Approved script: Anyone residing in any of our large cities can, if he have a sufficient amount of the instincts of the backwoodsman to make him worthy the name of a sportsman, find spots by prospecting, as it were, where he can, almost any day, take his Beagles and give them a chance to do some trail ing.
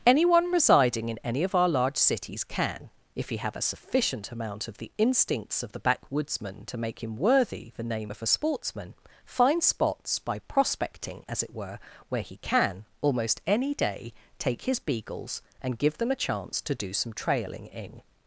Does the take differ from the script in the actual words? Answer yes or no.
yes